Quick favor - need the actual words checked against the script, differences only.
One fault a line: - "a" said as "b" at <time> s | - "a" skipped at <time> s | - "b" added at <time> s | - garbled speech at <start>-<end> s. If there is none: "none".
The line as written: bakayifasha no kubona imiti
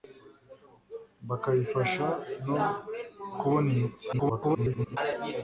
- garbled speech at 4.1-5.0 s